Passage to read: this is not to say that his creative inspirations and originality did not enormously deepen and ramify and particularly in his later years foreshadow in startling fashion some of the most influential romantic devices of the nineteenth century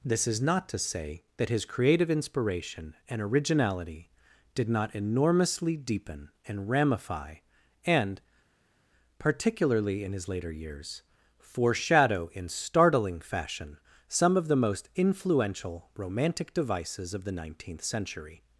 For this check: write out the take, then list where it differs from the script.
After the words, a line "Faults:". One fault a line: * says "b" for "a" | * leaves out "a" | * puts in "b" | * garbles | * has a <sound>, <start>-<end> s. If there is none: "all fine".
this is not to say that his creative inspiration and originality did not enormously deepen and ramify and particularly in his later years foreshadow in startling fashion some of the most influential romantic devices of the nineteenth century
Faults:
* says "inspiration" for "inspirations"